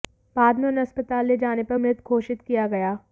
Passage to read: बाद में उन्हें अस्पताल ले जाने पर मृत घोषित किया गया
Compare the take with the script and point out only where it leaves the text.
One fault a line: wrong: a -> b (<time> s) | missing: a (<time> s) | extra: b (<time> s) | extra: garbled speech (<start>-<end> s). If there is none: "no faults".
no faults